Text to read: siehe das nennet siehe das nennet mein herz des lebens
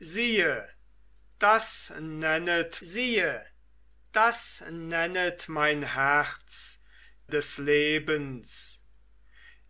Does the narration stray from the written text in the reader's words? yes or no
no